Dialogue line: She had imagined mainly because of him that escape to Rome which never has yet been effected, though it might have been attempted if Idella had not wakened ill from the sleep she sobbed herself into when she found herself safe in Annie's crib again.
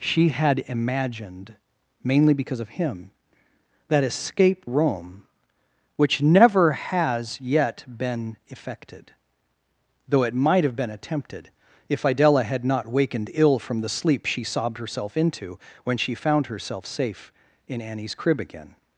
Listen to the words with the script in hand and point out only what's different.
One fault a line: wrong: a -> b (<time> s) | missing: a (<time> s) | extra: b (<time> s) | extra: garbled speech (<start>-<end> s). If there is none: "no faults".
missing: to (4.7 s)